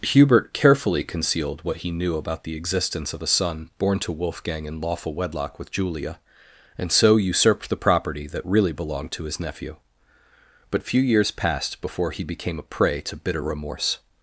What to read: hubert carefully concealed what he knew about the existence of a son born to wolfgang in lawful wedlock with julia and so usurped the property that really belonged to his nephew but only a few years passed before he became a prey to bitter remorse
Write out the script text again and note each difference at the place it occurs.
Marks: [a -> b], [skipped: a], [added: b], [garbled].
hubert carefully concealed what he knew about the existence of a son born to wolfgang in lawful wedlock with julia and so usurped the property that really belonged to his nephew but [skipped: only a] few years passed before he became a prey to bitter remorse